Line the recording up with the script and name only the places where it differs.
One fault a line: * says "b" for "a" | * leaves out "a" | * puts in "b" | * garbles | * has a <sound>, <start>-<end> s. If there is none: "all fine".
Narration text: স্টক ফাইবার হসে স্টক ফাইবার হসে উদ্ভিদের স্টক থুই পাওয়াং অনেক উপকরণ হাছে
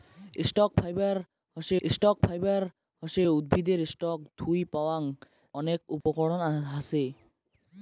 * has a dropout, 6.0-6.1 s